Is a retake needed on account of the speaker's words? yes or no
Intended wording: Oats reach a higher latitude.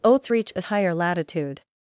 no